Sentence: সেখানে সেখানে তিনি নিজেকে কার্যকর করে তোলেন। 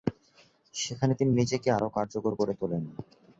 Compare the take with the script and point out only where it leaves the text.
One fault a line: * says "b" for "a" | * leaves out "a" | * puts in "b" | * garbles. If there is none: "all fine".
* leaves out "সেখানে"
* puts in "আরও"